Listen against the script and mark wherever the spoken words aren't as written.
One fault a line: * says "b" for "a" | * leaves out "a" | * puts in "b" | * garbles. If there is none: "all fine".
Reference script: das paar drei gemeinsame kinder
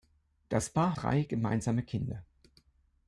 all fine